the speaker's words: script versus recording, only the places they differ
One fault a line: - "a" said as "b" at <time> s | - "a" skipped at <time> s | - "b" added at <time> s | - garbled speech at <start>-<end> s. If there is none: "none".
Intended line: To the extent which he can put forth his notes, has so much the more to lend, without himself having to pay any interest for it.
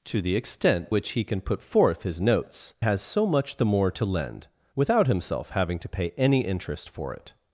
none